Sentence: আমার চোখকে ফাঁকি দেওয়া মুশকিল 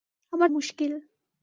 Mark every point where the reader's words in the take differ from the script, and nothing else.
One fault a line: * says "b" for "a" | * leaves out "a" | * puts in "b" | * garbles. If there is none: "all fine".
* leaves out "চোখকে ফাঁকি দেওয়া"